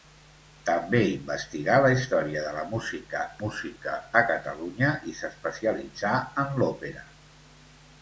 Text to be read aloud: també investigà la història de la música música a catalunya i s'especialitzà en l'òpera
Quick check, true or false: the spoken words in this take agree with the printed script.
true